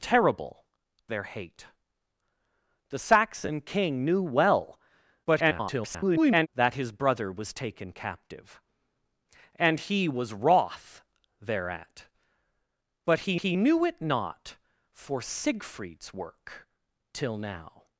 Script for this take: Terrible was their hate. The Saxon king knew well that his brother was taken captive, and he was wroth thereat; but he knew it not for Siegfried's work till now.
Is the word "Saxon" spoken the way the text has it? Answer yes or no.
yes